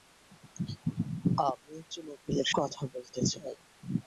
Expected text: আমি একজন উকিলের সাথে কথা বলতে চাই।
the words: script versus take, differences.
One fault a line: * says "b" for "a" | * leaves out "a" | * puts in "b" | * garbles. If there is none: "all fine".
* leaves out "সাথে"